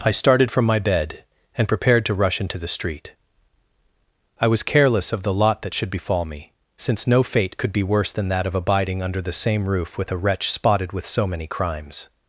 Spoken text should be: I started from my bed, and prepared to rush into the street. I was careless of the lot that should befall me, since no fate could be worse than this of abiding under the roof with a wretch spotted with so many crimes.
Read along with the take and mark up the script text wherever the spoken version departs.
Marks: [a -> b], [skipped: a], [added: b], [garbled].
I started from my bed, and prepared to rush into the street. I was careless of the lot that should befall me, since no fate could be worse than [this -> that] of abiding under the [added: same] roof with a wretch spotted with so many crimes.